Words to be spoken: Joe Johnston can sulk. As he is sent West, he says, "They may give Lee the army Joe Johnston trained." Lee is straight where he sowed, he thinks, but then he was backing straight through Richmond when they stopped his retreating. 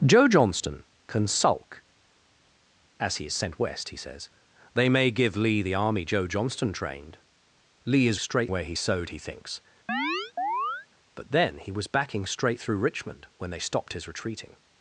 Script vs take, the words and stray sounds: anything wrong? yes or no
yes